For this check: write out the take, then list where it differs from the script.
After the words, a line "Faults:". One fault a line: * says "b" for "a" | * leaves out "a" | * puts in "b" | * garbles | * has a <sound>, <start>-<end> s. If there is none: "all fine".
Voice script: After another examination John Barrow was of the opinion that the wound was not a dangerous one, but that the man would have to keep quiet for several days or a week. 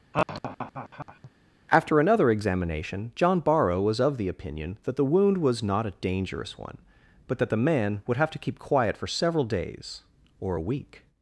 After another examination John Barrow was of the opinion that the wound was not a dangerous one, but that the man would have to keep quiet for several days or a week.
Faults:
* has a laugh, 0.1-1.3 s